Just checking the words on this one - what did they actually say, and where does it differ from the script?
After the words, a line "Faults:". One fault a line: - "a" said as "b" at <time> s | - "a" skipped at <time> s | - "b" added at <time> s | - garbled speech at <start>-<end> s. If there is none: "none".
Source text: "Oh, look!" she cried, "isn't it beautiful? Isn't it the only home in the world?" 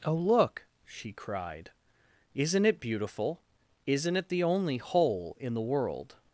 "Oh, look!" she cried, "isn't it beautiful? Isn't it the only hole in the world?"
Faults:
- "home" said as "hole" at 4.8 s